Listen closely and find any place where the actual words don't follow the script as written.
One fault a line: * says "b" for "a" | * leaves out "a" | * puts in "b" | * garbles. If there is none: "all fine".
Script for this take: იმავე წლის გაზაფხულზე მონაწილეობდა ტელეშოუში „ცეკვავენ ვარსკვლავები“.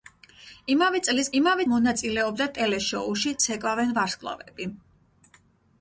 * says "იმავე" for "გაზაფხულზე"